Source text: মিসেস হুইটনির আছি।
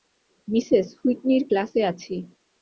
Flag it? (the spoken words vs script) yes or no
yes